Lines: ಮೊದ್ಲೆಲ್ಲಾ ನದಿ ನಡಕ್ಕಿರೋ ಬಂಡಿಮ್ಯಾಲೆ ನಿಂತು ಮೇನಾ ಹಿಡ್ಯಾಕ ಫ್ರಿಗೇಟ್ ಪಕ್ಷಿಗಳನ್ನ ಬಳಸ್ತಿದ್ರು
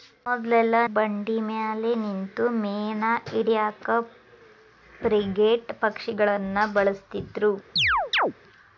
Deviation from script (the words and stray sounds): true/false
true